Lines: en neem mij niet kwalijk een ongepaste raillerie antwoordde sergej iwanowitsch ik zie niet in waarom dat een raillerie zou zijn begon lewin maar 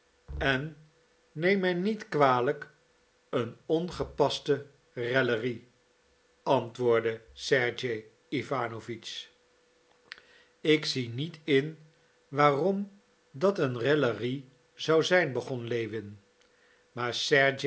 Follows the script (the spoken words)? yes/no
yes